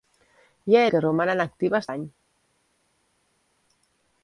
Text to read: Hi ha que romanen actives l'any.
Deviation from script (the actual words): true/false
false